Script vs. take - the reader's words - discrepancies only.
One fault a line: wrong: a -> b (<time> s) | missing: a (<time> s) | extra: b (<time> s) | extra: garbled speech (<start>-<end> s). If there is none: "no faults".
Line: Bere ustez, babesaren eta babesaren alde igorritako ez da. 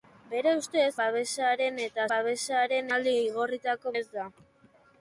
no faults